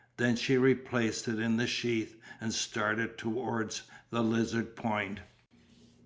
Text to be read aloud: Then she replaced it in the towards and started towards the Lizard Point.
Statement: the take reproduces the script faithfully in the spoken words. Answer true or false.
false